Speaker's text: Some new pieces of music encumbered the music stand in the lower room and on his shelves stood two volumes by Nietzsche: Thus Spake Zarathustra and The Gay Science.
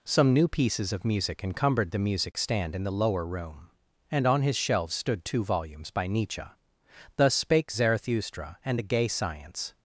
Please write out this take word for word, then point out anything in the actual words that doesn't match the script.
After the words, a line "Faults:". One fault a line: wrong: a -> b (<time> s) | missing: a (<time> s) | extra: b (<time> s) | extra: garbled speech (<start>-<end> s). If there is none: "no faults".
Some new pieces of music encumbered the music stand in the lower room and on his shelves stood two volumes by Nietzsche: Thus Spake Zarathustra and The Gay Science.
Faults:
no faults